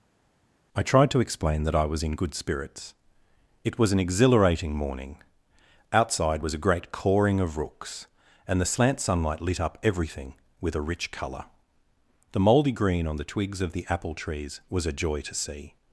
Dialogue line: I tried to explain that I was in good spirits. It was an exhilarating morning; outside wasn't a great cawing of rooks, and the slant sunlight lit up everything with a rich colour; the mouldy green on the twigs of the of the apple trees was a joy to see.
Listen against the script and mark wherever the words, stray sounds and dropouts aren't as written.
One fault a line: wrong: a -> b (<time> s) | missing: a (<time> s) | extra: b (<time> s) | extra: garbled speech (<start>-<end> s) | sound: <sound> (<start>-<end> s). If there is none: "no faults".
wrong: wasn't -> was (6.4 s)
missing: of the (13.9 s)